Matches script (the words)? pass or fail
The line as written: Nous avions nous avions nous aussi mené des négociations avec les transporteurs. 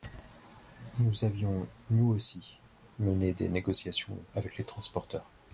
fail